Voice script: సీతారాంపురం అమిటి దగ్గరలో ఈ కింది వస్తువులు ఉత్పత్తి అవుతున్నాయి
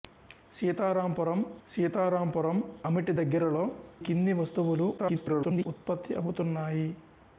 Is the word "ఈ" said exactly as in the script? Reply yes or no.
no